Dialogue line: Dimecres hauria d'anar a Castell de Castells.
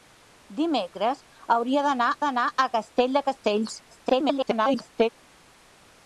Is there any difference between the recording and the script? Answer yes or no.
yes